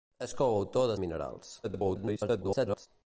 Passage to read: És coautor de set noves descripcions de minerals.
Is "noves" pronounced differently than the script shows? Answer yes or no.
yes